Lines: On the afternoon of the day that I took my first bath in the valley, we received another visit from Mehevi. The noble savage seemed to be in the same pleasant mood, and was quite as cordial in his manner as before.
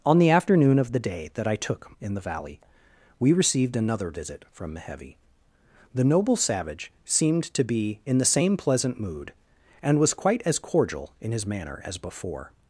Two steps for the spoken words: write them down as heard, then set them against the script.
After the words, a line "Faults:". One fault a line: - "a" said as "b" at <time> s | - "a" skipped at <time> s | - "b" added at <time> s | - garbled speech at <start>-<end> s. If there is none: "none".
On the afternoon of the day that I took in the valley, we received another visit from Mehevi. The noble savage seemed to be in the same pleasant mood, and was quite as cordial in his manner as before.
Faults:
- "my first bath" skipped at 1.9 s